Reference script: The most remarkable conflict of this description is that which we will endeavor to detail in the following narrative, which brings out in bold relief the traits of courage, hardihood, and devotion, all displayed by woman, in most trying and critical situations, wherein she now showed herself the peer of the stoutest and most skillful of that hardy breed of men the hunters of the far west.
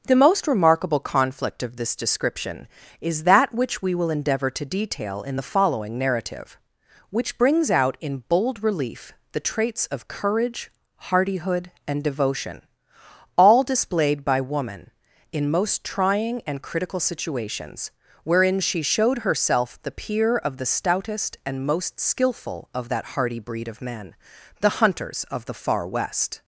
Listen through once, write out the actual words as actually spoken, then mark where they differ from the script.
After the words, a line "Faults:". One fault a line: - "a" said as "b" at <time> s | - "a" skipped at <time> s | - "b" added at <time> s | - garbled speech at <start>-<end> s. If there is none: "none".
The most remarkable conflict of this description is that which we will endeavor to detail in the following narrative, which brings out in bold relief the traits of courage, hardihood, and devotion, all displayed by woman, in most trying and critical situations, wherein she showed herself the peer of the stoutest and most skillful of that hardy breed of men the hunters of the far west.
Faults:
- "now" skipped at 18.8 s